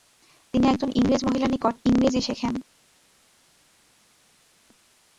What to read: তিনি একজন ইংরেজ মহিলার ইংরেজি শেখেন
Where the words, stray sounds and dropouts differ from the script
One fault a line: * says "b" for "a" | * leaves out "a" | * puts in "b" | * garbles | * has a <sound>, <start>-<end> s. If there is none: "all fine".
* puts in "নিকট"